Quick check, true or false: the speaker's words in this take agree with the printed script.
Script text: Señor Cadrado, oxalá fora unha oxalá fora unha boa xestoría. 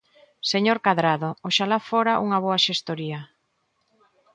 false